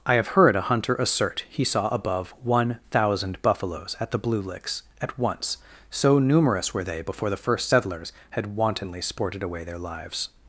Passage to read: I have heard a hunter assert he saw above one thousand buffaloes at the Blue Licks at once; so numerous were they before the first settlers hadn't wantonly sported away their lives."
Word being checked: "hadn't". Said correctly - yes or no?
no